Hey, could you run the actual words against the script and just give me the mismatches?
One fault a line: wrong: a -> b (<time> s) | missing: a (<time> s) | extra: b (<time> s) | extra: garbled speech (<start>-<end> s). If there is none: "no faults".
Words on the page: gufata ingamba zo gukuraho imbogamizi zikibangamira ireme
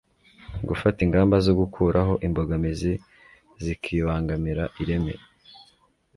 no faults